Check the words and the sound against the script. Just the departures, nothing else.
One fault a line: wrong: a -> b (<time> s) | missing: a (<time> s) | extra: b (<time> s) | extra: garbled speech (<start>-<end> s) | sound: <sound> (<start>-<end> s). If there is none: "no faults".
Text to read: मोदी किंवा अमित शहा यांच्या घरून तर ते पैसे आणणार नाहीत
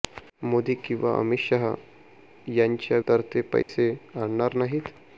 missing: घरून (3.0 s)
sound: dropout (3.6-3.7 s)